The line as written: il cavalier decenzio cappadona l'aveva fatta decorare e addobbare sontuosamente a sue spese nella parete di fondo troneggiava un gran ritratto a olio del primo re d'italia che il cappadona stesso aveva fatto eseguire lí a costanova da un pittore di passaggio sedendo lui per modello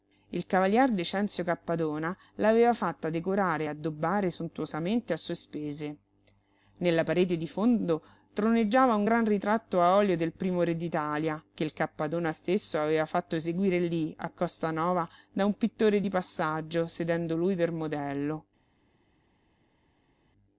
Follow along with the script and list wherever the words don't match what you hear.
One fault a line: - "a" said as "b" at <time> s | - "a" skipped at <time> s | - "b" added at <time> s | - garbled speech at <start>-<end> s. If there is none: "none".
none